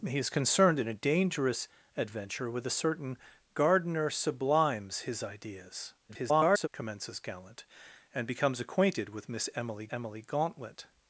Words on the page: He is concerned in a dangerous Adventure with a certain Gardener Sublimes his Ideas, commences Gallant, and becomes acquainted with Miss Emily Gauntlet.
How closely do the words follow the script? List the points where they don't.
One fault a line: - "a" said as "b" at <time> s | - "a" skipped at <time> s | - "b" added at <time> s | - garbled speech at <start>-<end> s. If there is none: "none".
- garbled speech at 6.1-6.7 s
- "Emily" added at 9.9 s